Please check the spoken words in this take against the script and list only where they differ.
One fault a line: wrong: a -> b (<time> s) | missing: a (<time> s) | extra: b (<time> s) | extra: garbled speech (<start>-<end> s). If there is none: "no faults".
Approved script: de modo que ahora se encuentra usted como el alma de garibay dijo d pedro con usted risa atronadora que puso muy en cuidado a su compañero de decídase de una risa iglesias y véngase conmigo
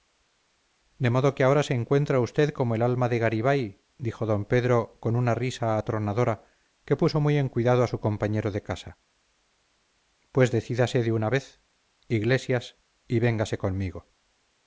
wrong: usted -> una (5.2 s)
extra: casa pues (8.6 s)
wrong: risa -> vez (11.3 s)